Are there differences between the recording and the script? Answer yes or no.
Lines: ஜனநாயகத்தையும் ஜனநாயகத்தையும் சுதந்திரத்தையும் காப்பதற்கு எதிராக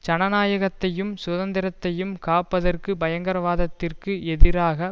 yes